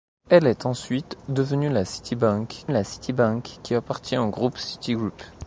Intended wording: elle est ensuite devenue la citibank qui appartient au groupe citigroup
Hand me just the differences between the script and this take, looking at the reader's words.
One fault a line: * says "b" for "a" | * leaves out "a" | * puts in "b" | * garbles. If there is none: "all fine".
* puts in "la citibank"